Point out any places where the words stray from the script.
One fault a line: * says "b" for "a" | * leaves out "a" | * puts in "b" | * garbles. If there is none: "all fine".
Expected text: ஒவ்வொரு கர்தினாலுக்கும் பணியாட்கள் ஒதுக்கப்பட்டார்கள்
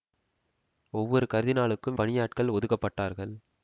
all fine